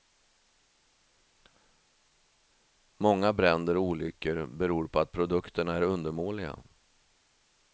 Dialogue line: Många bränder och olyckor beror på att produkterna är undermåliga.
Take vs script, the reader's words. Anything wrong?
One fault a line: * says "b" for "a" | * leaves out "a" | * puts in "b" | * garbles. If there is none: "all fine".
all fine